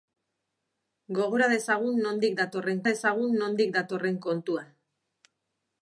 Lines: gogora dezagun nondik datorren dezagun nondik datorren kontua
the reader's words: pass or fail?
pass